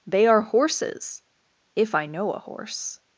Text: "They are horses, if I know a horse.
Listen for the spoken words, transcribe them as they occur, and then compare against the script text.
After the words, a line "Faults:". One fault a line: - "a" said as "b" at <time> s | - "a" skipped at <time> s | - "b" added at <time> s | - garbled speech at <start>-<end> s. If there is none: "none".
"They are horses, if I know a horse.
Faults:
none